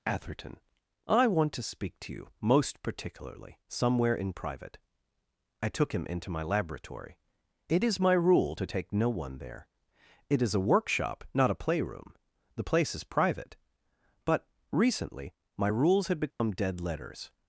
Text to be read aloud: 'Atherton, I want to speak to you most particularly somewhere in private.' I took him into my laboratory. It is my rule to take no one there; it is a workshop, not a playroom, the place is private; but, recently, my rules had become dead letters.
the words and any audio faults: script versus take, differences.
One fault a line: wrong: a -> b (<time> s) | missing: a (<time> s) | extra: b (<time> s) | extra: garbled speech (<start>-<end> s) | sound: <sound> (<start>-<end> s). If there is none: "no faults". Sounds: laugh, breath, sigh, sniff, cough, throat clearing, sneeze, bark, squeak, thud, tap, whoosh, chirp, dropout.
sound: dropout (16.3-16.4 s)